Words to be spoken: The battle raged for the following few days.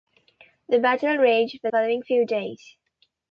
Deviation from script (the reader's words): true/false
true